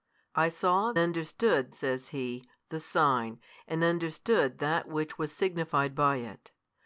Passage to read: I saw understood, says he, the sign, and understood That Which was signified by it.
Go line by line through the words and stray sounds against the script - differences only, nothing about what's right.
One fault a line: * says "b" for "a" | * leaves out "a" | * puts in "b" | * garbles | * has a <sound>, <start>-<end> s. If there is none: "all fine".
all fine